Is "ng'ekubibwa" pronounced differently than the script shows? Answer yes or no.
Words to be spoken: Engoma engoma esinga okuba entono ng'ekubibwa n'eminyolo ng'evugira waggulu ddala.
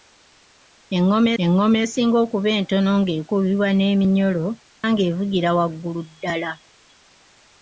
no